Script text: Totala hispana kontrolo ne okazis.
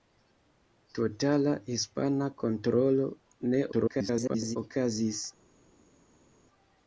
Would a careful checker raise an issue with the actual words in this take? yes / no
yes